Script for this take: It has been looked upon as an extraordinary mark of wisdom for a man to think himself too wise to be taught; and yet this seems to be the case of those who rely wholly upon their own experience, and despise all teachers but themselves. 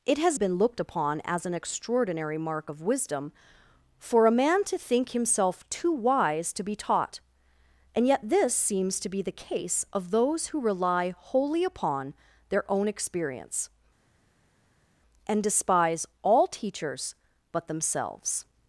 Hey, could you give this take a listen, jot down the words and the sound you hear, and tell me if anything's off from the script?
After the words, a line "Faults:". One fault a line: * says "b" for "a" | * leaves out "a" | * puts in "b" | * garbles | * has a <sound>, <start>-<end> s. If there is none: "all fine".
It has been looked upon as an extraordinary mark of wisdom for a man to think himself too wise to be taught; and yet this seems to be the case of those who rely wholly upon their own experience, and despise all teachers but themselves.
Faults:
all fine